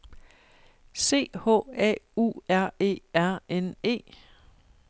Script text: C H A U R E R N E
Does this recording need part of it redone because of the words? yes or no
no